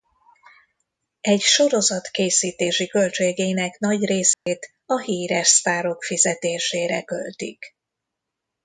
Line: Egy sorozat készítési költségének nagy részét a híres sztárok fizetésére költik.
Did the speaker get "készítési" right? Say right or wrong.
right